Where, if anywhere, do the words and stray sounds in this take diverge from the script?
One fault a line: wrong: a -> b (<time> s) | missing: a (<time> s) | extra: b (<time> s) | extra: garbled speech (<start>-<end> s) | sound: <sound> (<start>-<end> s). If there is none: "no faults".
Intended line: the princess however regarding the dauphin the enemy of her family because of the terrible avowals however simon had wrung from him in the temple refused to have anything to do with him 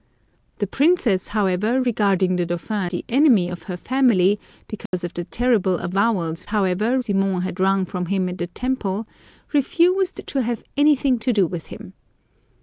sound: dropout (4.9-4.9 s)